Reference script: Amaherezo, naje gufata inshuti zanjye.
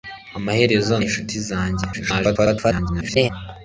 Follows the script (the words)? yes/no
no